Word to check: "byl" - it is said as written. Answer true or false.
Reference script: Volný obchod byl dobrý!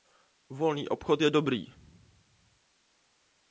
false